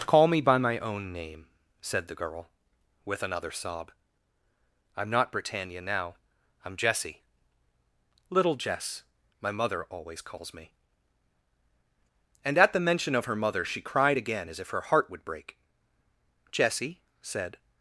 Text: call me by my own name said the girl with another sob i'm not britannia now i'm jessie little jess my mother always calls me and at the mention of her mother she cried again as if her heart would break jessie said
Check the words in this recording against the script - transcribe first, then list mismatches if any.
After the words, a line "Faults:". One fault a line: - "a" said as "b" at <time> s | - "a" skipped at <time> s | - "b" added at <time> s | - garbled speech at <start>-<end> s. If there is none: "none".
call me by my own name said the girl with another sob i'm not britannia now i'm jessie little jess my mother always calls me and at the mention of her mother she cried again as if her heart would break jessie said
Faults:
none